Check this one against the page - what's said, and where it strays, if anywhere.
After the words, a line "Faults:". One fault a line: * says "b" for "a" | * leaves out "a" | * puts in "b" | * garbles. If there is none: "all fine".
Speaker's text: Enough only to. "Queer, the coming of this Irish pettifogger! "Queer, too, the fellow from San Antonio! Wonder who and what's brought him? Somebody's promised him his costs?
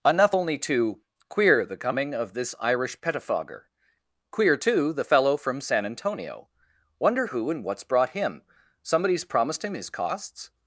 Enough only to. "Queer, the coming of this Irish pettifogger! "Queer, too, the fellow from San Antonio! Wonder who and what's brought him? Somebody's promised him his costs?
Faults:
all fine